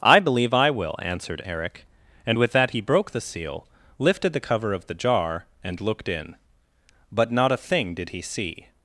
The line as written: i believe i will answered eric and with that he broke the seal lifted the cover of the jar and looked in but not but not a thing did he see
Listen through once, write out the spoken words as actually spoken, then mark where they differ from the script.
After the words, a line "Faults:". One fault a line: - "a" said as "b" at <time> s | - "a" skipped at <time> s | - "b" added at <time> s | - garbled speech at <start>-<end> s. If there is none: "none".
i believe i will answered eric and with that he broke the seal lifted the cover of the jar and looked in but not a thing did he see
Faults:
- "but not" skipped at 7.5 s